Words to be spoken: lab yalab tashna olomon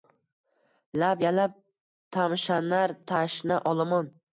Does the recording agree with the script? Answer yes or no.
no